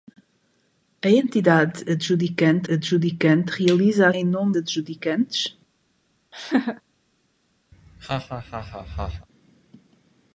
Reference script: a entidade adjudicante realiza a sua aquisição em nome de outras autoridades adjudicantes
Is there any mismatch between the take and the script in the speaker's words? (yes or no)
yes